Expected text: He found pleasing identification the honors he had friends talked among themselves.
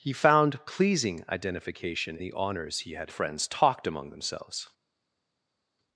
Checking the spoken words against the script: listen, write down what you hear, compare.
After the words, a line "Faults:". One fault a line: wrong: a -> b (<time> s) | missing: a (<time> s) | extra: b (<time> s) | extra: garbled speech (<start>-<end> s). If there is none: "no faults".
He found pleasing identification the honors he had friends talked among themselves.
Faults:
no faults